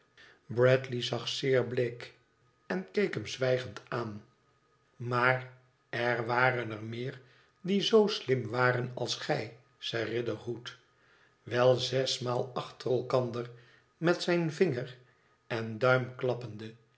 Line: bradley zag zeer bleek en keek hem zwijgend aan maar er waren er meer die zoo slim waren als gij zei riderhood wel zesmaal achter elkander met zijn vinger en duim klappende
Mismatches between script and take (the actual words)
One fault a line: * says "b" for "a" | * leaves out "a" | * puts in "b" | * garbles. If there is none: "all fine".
all fine